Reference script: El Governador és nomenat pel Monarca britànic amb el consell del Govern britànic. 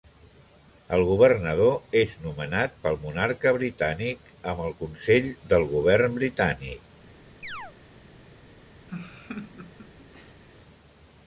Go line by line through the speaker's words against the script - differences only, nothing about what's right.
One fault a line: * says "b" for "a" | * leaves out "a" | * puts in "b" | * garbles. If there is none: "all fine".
all fine